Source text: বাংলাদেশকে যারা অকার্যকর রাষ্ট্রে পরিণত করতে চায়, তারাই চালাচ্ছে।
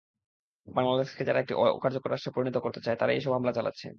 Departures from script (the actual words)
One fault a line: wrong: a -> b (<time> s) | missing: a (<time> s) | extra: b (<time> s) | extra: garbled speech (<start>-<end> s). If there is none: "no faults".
extra: একটি (1.4 s)
extra: এসব হামলা (3.2 s)